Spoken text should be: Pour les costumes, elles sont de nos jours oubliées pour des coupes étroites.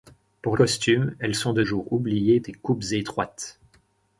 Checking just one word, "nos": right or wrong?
wrong